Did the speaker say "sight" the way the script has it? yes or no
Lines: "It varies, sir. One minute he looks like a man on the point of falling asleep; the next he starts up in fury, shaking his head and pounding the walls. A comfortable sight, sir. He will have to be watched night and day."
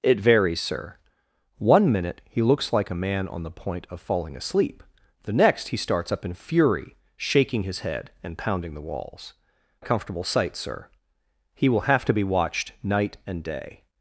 yes